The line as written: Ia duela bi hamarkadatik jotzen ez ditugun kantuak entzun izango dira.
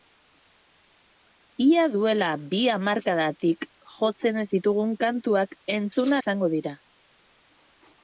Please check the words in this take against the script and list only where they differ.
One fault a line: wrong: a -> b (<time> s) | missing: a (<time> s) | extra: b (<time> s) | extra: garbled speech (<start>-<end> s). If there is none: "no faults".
no faults